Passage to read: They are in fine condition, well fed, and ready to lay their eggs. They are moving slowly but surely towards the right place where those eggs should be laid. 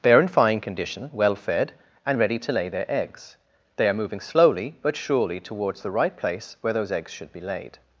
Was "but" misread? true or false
false